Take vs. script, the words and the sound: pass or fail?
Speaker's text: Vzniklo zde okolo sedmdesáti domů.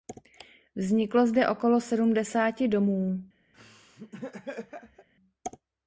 fail